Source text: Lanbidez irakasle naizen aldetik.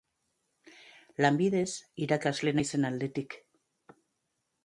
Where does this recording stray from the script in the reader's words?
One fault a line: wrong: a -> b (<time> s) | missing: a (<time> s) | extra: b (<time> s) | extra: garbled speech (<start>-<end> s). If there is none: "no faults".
no faults